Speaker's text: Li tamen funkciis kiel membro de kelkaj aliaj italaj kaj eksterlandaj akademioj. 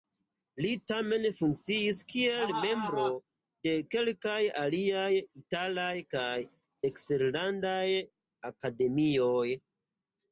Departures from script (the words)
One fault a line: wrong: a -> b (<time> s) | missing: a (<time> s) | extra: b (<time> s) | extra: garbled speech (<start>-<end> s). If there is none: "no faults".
no faults